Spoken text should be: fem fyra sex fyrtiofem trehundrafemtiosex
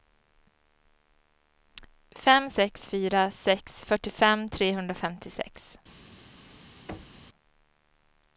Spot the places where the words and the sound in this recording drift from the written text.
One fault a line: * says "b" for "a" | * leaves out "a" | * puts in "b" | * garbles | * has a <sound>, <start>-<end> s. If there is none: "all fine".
* puts in "sex"
* has a thud, 6.9-7.3 s